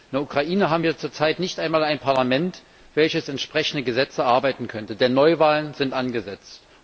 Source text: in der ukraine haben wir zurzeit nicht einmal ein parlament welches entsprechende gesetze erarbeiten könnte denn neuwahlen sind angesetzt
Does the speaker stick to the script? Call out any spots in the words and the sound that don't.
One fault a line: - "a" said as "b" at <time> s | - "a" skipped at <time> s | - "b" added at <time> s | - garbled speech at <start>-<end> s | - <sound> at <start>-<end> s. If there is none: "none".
none